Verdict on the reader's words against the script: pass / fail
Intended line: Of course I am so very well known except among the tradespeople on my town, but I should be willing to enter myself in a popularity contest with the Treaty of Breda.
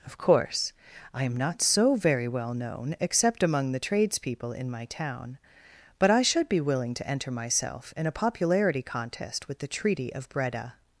fail